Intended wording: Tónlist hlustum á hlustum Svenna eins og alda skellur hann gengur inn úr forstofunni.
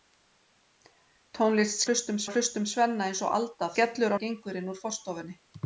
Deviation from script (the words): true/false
false